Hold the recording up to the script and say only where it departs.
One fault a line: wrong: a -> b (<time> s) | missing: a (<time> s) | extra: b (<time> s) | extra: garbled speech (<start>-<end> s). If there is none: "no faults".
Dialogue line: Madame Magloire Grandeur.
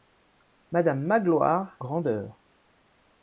no faults